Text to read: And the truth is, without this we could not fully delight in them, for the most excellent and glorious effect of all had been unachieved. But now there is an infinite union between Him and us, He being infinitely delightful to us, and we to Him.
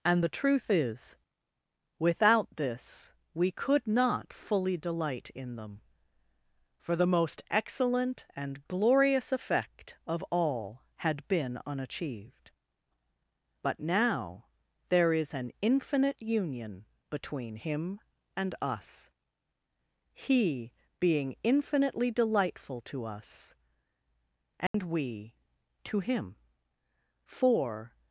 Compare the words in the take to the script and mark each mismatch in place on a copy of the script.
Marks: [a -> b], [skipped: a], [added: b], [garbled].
And the truth is, without this we could not fully delight in them, for the most excellent and glorious effect of all had been unachieved. But now there is an infinite union between Him and us, He being infinitely delightful to us, and we to Him. [added: For]